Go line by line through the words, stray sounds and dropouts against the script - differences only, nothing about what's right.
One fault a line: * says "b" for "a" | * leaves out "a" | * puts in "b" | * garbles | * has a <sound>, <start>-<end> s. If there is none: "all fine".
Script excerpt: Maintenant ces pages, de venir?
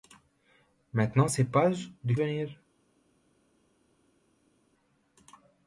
all fine